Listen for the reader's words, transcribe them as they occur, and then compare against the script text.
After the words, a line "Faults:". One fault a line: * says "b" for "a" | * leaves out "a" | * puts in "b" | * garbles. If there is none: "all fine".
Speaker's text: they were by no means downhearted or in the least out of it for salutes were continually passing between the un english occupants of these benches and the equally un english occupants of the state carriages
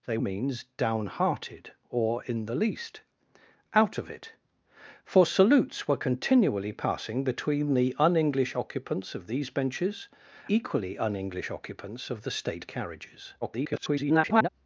they means downhearted or in the least out of it for salutes were continually passing between the un english occupants of these benches equally un english occupants of the state carriages [garbled]
Faults:
* leaves out "were by no"
* leaves out "and the"
* garbles